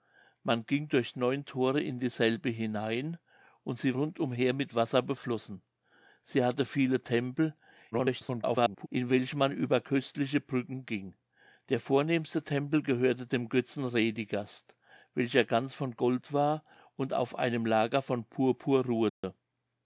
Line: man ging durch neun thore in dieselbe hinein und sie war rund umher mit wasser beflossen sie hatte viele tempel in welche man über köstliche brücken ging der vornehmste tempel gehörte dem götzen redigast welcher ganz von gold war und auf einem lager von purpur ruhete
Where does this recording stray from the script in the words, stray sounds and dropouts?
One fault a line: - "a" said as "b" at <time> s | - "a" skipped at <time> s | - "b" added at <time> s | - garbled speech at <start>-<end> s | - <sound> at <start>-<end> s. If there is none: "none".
- "war" skipped at 3.9 s
- garbled speech at 7.9-8.9 s
- dropout at 19.1-19.2 s